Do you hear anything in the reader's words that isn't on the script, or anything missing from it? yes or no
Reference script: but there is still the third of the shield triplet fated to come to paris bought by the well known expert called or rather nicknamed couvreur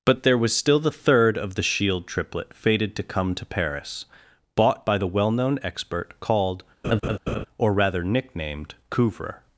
yes